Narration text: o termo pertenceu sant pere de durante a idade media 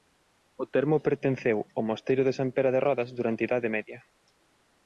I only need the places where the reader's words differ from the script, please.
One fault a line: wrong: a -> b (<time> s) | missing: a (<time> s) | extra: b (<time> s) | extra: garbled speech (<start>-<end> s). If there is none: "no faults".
extra: ao mosteiro de (1.8 s)
extra: rodes (2.9 s)